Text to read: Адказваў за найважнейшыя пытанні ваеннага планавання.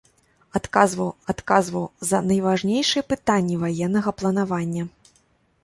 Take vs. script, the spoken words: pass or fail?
fail